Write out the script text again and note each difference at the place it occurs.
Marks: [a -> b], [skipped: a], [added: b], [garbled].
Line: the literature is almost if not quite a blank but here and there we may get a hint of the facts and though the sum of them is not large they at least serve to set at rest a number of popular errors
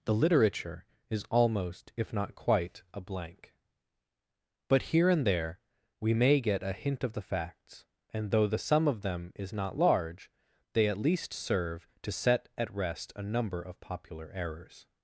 the literature is almost if not quite a blank but here and there we may get a hint of the facts and though the sum of them is not large they at least serve to set at rest a number of popular errors